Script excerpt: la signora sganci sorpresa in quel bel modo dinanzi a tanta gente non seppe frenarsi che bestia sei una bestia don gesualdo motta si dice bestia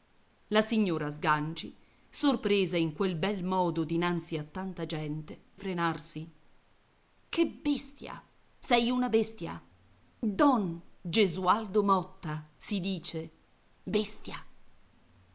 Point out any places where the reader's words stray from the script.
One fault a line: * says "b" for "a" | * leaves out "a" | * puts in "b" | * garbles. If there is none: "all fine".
* leaves out "non seppe"